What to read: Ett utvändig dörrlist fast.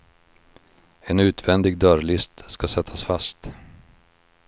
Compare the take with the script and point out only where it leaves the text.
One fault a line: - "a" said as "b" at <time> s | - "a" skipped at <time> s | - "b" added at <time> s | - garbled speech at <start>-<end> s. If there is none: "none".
- "Ett" said as "En" at 1.0 s
- "ska sättas" added at 2.5 s